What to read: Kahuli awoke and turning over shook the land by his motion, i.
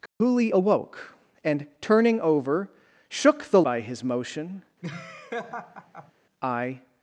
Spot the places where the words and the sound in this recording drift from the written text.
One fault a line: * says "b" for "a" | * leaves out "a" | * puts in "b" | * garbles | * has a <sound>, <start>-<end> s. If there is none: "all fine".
* has a dropout, 0.1-0.2 s
* leaves out "land"
* has a laugh, 4.8-6.1 s